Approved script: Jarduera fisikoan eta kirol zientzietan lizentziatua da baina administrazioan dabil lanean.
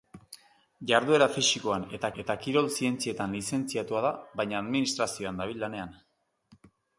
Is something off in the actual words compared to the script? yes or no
yes